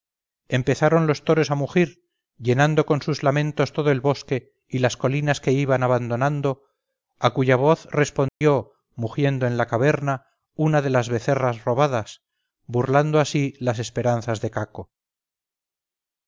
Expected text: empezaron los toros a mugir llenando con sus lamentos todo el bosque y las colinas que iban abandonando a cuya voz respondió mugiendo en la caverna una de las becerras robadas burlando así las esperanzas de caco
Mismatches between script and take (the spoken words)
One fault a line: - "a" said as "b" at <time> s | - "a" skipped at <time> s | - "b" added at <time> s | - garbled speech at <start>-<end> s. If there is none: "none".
none